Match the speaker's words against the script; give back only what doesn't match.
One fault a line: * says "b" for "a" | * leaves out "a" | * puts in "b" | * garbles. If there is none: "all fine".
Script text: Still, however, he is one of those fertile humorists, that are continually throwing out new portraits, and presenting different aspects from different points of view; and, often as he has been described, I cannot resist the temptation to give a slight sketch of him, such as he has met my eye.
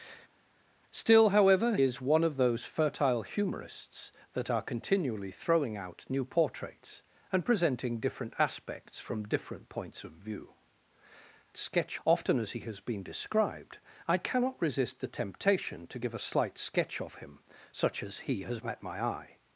* leaves out "he"
* says "sketch" for "and"